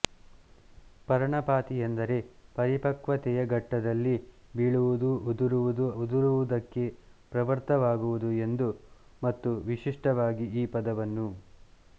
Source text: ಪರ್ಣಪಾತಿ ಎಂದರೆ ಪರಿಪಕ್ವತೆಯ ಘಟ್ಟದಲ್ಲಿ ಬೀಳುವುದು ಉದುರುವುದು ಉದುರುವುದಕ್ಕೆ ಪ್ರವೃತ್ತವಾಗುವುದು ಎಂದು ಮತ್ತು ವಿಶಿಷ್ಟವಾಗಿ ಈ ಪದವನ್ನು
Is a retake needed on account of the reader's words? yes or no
no